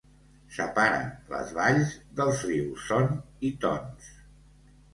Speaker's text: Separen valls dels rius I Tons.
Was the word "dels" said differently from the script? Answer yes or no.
no